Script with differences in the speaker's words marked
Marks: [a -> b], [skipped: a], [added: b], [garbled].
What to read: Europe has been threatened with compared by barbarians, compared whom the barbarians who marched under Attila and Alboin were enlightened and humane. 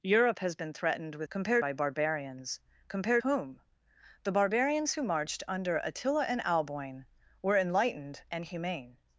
Europe has been threatened with compared by barbarians, compared whom the barbarians who marched under Attila and Alboin were enlightened and humane.